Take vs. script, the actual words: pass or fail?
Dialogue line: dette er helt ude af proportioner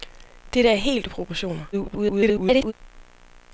fail